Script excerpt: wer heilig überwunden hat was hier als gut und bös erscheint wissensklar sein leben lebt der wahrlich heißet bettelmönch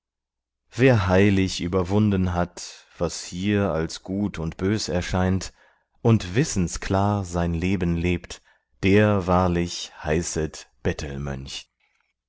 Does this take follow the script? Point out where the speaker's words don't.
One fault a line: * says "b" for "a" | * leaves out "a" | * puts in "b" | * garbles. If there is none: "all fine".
* puts in "und"